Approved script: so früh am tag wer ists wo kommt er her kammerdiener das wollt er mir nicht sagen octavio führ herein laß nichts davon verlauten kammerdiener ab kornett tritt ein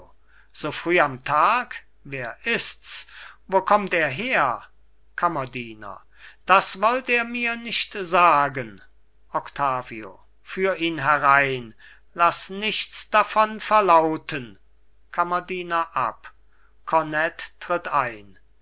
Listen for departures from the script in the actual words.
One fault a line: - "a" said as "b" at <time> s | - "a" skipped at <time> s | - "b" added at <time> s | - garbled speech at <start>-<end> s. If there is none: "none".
- "ihn" added at 10.8 s